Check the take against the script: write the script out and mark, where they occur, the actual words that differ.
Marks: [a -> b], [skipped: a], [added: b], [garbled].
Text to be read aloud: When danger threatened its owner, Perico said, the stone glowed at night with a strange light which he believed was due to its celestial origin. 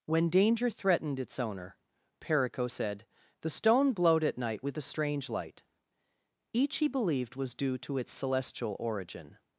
When danger threatened its owner, Perico said, the stone glowed at night with a strange light [which -> each] he believed was due to its celestial origin.